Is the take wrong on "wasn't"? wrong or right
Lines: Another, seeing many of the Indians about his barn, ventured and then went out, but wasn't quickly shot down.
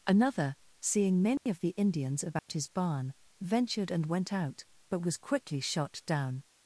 wrong